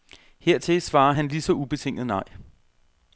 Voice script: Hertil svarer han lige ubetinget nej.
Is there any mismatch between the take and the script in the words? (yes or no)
yes